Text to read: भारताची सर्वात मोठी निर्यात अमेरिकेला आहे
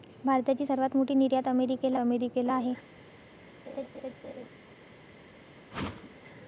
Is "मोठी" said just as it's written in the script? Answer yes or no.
yes